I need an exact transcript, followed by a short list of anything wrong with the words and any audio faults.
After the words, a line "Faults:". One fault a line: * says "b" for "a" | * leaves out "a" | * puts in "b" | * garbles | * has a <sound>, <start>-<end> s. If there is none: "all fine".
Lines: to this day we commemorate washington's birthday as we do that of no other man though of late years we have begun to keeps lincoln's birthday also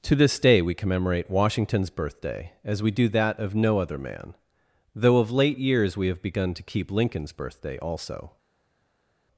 to this day we commemorate washington's birthday as we do that of no other man though of late years we have begun to keep lincoln's birthday also
Faults:
* says "keep" for "keeps"